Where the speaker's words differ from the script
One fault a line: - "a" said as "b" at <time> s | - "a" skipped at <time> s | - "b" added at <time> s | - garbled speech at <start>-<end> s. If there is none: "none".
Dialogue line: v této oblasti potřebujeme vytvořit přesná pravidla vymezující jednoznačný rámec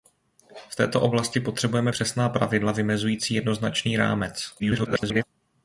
- "vytvořit" skipped at 1.9 s
- garbled speech at 4.6-5.2 s